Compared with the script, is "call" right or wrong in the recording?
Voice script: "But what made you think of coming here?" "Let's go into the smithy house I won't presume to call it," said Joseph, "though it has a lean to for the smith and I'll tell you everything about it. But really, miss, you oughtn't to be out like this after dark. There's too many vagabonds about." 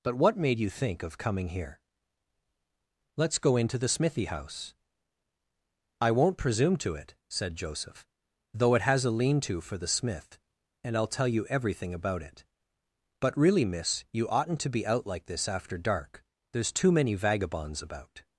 wrong